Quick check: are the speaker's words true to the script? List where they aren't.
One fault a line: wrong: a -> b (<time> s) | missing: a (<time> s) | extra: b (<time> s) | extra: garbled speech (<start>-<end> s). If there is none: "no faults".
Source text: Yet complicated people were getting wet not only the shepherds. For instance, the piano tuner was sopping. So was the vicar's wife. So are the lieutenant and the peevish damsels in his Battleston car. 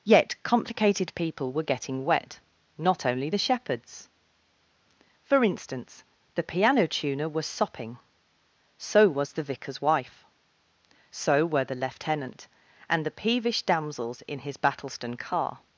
wrong: are -> were (11.4 s)